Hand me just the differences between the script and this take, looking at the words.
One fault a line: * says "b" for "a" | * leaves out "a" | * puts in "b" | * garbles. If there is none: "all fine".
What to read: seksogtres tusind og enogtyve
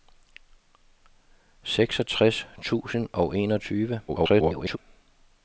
* garbles